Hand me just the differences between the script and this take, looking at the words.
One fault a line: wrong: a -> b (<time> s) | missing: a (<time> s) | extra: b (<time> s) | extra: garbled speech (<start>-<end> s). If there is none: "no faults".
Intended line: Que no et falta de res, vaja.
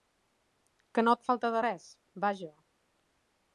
no faults